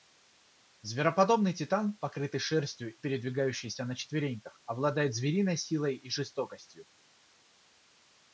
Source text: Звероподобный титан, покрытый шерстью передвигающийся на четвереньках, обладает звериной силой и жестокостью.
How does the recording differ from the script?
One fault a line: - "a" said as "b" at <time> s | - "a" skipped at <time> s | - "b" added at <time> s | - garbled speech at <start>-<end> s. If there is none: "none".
none